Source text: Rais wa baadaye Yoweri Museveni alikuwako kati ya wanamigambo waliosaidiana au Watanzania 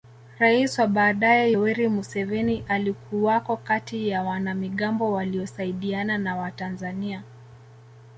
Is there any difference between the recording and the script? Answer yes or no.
yes